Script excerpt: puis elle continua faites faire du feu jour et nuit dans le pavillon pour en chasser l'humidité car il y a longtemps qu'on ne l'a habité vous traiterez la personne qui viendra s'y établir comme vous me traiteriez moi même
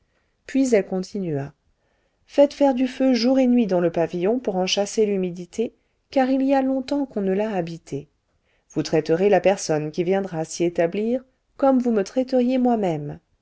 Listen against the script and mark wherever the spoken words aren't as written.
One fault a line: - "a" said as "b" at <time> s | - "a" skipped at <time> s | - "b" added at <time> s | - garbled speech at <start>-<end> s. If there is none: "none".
none